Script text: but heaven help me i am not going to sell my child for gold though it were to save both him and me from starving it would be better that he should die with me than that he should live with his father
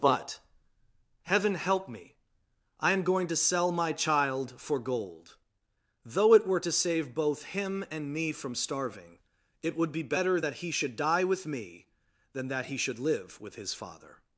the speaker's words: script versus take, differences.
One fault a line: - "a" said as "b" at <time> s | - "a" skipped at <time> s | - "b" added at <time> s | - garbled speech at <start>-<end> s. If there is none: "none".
- "not" skipped at 3.0 s